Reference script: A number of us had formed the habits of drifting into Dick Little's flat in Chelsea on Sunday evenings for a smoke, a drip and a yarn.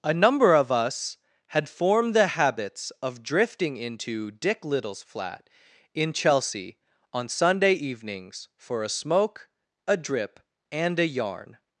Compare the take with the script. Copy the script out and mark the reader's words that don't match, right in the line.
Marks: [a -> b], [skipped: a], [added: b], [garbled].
A number of us had formed the habits of drifting into Dick Little's flat in Chelsea on Sunday evenings for a smoke, a drip and a yarn.